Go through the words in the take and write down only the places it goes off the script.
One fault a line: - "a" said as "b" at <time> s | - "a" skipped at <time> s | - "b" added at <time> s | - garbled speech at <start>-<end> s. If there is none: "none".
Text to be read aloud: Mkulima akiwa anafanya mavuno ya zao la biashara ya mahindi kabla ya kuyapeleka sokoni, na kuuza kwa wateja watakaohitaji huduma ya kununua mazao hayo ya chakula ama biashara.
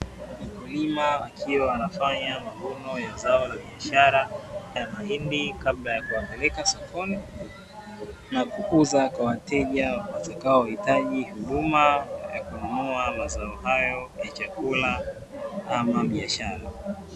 none